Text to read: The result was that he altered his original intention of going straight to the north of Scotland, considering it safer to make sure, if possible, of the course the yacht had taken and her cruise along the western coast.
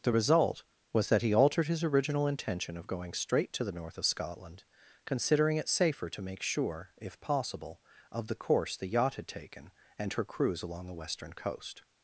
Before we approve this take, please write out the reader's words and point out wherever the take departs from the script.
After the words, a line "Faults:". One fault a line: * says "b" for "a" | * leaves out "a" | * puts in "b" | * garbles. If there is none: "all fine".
The result was that he altered his original intention of going straight to the north of Scotland, considering it safer to make sure, if possible, of the course the yacht had taken and her cruise along the western coast.
Faults:
all fine